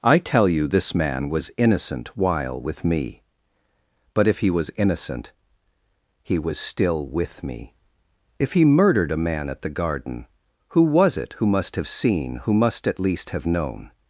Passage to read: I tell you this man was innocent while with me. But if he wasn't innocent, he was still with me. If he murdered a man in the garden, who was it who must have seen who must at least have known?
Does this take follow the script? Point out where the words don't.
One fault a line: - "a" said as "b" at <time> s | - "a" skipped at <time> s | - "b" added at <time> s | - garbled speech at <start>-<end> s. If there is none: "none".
- "wasn't" said as "was" at 4.5 s
- "in" said as "at" at 9.5 s